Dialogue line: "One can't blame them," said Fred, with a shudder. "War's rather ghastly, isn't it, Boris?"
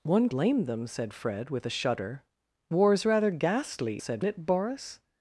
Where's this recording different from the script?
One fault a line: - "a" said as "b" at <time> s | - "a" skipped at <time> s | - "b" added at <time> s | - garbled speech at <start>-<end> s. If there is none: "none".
- "can't" skipped at 0.3 s
- "isn't" said as "said" at 4.0 s